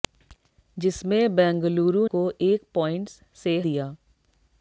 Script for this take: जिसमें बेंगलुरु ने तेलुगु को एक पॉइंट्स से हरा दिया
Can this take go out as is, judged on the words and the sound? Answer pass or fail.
fail